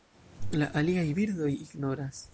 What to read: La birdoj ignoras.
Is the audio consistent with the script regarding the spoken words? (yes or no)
no